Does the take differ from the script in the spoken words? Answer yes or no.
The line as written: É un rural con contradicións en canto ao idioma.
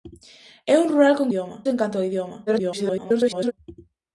yes